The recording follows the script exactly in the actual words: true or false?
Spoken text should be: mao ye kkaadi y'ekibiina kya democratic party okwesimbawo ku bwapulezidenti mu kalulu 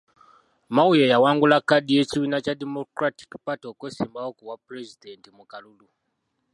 false